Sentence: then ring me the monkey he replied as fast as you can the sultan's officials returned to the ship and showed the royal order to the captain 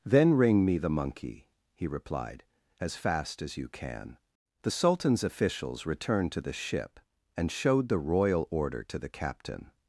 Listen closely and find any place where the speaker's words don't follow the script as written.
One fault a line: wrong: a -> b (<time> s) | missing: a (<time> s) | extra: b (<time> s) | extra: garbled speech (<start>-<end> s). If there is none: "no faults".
no faults